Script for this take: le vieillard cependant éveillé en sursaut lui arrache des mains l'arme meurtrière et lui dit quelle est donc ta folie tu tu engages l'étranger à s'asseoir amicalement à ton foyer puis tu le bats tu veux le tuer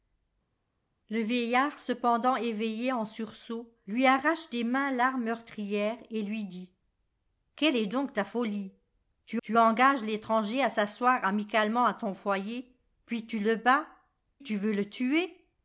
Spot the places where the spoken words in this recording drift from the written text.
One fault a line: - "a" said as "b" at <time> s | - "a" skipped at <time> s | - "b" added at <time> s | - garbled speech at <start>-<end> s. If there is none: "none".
none